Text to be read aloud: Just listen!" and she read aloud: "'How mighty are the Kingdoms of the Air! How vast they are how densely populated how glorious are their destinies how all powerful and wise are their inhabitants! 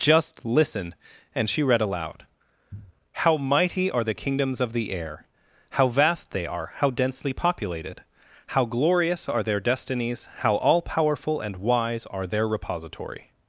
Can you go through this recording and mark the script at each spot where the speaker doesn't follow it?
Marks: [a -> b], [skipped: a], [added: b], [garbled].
Just listen!" and she read aloud: "'How mighty are the Kingdoms of the Air! How vast they are how densely populated how glorious are their destinies how all powerful and wise are their [inhabitants! -> repository]